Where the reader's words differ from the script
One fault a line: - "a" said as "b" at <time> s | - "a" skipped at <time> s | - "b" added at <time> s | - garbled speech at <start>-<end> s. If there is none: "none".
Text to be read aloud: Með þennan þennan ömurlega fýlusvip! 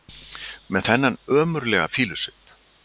- "þennan" skipped at 1.2 s